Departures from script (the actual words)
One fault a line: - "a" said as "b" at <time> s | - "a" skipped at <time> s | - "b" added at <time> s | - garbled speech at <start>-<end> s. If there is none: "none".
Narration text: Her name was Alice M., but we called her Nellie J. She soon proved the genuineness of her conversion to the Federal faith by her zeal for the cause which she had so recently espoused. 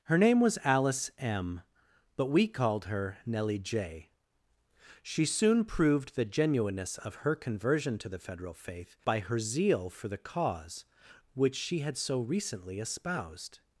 none